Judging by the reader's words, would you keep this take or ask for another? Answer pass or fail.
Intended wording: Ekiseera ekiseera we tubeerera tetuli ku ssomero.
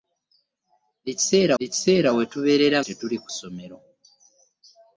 pass